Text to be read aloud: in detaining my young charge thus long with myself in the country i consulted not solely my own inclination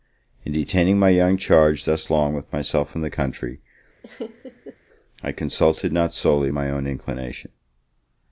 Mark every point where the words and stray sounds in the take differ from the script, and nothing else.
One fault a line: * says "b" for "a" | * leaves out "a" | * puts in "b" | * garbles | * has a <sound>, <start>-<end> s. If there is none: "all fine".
* has a laugh, 4.0-4.8 s